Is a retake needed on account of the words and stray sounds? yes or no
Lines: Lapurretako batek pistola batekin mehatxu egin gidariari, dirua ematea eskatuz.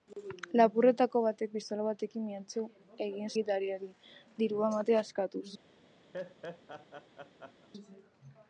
yes